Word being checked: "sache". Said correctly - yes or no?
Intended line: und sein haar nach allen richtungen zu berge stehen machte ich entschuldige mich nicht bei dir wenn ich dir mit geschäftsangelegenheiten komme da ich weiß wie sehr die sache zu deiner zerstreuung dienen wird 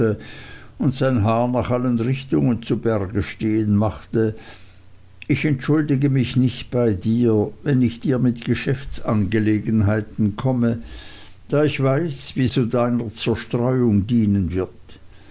no